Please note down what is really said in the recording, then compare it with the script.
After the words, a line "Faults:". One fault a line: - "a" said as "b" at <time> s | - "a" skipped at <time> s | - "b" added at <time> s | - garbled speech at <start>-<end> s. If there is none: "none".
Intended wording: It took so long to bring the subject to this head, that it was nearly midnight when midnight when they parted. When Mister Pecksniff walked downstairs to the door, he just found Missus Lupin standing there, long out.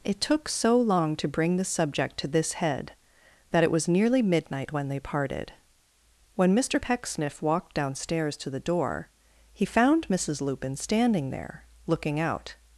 It took so long to bring the subject to this head, that it was nearly midnight when they parted. When Mister Pecksniff walked downstairs to the door, he found Missus Lupin standing there, looking out.
Faults:
- "midnight when" skipped at 4.9 s
- "just" skipped at 9.6 s
- "long" said as "looking" at 11.8 s